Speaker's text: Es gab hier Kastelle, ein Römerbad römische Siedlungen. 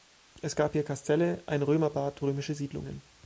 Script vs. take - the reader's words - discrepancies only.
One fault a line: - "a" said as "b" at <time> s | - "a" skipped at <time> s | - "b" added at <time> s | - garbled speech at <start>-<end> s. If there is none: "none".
none